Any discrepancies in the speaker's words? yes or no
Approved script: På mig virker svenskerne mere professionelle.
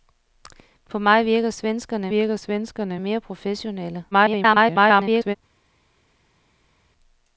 yes